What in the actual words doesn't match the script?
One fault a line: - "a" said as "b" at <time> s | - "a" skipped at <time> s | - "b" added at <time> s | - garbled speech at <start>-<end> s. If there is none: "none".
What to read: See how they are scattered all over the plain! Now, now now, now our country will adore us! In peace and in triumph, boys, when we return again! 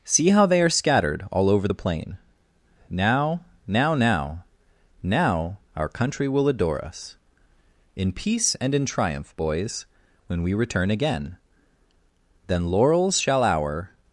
- "Then laurels shall our" added at 12.5 s